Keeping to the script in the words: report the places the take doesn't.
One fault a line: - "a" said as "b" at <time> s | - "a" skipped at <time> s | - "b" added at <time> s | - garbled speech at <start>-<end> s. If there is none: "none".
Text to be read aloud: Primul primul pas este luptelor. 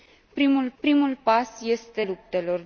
none